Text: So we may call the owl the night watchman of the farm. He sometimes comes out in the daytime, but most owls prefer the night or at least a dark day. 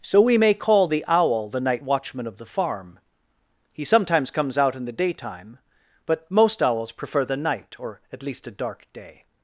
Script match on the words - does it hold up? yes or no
yes